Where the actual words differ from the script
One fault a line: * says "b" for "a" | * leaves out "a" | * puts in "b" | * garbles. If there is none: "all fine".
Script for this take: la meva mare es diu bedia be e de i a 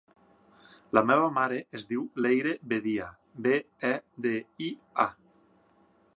* puts in "leyre"